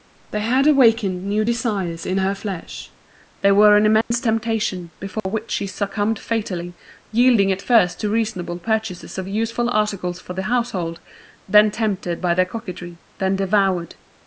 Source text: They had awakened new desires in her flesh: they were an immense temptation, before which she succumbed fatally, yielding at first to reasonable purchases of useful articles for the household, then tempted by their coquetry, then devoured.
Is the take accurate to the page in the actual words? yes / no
yes